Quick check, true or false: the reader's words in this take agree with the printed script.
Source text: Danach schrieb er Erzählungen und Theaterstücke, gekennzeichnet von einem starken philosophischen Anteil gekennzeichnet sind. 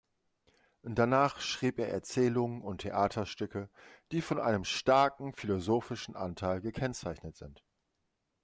false